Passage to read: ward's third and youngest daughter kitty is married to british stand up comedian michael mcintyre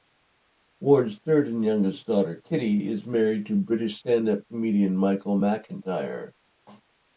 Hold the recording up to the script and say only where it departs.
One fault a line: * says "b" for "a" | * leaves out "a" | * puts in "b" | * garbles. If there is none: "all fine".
all fine